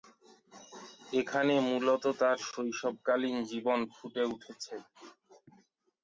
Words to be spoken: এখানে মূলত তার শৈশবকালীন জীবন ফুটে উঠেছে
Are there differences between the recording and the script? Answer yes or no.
no